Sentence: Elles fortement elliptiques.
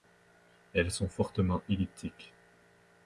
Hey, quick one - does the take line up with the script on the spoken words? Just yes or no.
no